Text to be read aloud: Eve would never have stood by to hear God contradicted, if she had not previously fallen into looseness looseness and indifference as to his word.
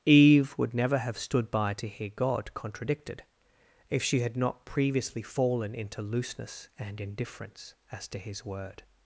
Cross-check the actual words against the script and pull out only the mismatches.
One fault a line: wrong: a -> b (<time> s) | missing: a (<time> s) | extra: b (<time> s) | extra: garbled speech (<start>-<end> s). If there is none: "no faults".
missing: looseness (6.7 s)